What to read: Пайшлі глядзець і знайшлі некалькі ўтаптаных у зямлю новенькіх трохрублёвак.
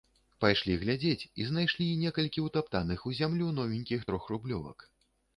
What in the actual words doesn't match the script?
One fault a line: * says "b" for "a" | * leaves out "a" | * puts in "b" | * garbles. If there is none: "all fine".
all fine